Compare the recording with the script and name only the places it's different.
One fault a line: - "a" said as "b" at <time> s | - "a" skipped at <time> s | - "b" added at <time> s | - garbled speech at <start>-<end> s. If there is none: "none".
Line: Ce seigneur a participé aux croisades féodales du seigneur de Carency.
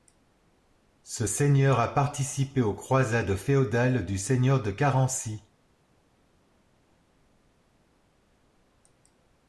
none